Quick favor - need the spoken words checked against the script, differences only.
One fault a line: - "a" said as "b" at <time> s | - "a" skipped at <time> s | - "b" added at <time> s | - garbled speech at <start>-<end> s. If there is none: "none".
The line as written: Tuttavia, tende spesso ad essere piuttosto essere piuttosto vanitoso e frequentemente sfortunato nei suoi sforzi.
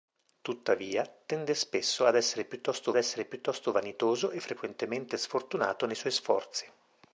none